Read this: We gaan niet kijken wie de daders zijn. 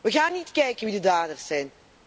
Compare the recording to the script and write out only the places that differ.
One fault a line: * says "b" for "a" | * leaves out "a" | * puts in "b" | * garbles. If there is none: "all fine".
all fine